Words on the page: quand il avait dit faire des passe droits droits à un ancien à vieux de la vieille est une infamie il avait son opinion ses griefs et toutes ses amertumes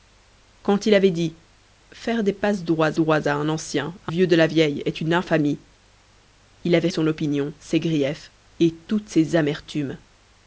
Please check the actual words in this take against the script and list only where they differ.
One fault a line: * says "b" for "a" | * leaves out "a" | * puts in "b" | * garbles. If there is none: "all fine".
all fine